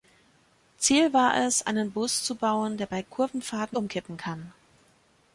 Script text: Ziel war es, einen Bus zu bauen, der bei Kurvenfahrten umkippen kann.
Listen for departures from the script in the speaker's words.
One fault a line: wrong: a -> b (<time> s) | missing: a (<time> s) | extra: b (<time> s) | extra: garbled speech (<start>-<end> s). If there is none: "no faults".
no faults